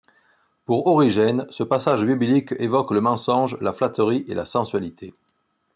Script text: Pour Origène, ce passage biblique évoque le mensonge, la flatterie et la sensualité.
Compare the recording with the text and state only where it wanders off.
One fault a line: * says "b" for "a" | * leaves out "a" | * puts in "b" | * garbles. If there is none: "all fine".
all fine